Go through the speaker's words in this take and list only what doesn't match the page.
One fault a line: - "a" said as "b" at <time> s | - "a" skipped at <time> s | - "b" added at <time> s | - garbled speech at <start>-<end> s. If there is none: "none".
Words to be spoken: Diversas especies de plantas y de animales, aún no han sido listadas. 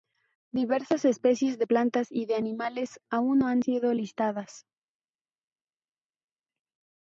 none